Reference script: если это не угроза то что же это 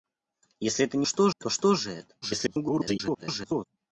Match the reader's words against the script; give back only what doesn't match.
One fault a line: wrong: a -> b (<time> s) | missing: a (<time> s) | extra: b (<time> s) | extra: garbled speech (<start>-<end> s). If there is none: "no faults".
wrong: угроза -> что (1.0 s)
extra: garbled speech (2.2-3.6 s)